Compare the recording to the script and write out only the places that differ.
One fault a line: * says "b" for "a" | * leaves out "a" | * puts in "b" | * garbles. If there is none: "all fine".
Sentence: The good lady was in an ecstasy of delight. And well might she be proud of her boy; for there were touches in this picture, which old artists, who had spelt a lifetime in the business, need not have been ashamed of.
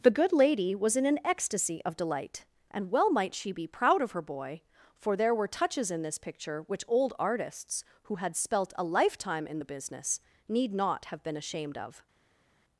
all fine